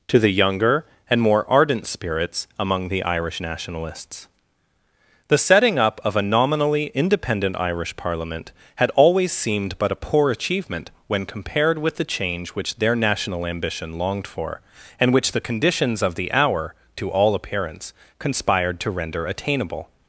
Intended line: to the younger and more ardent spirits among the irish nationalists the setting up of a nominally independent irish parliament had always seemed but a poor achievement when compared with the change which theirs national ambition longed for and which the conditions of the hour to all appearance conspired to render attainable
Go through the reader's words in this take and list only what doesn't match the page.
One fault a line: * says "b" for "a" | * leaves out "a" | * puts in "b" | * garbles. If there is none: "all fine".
* says "their" for "theirs"